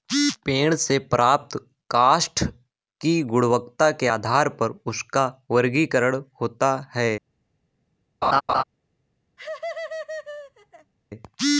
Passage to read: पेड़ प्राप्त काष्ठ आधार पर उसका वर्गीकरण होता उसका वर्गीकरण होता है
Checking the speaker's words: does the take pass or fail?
fail